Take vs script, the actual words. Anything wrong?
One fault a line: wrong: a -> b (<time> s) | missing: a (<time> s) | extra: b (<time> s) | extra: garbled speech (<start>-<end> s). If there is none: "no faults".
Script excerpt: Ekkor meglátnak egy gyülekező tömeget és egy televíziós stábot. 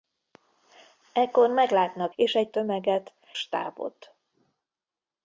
missing: egy gyülekező tömeget (2.1 s)
wrong: televíziós -> tömeget (2.5 s)